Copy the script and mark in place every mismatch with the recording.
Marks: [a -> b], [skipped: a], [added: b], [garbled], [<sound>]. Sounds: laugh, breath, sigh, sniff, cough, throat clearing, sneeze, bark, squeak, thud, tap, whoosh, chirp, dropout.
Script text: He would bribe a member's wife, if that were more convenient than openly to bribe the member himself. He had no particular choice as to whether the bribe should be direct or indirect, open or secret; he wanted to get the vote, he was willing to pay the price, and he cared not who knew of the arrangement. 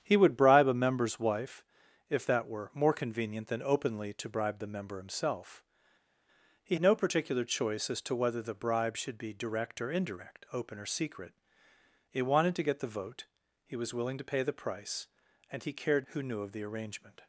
He would bribe a member's wife, if that were more convenient than openly to bribe the member himself. He [skipped: had] no particular choice as to whether the bribe should be direct or indirect, open or secret; he wanted to get the vote, he was willing to pay the price, and he cared [skipped: not] who knew of the arrangement.